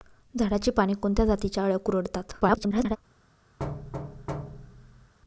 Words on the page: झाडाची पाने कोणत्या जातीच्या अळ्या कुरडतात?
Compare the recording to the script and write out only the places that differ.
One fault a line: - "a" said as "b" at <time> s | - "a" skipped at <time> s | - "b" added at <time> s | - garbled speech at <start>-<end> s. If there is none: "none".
- garbled speech at 2.4-3.0 s